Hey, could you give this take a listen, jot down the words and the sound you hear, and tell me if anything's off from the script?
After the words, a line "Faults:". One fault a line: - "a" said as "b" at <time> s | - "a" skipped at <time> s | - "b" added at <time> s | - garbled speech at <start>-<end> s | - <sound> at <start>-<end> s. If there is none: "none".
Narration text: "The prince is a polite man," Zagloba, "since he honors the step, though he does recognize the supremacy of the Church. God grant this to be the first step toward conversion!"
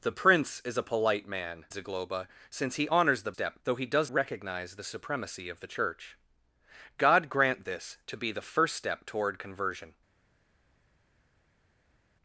"The prince is a polite man," Zagloba, "since he honors the step, though he does recognize the supremacy of the Church. God grant this to be the first step toward conversion!"
Faults:
none